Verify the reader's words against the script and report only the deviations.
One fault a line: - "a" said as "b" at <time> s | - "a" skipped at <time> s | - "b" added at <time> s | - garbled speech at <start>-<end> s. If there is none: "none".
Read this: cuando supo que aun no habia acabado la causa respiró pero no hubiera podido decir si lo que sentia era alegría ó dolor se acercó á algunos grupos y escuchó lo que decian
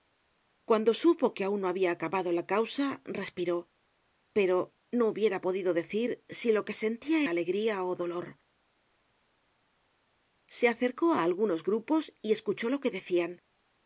- "era" skipped at 7.2 s